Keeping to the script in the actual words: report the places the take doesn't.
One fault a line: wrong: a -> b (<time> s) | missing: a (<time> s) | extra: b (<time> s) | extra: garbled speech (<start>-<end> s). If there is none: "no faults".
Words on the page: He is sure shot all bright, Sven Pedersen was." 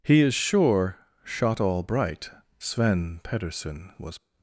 no faults